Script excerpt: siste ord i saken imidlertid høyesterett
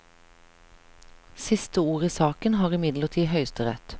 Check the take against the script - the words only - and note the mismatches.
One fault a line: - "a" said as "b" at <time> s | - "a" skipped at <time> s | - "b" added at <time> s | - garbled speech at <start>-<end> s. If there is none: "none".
- "har" added at 2.6 s